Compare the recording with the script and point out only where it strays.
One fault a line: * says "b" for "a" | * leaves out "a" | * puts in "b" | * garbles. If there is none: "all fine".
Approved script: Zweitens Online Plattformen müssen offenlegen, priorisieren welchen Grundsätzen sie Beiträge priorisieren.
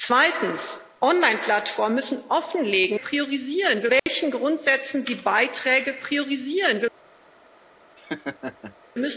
all fine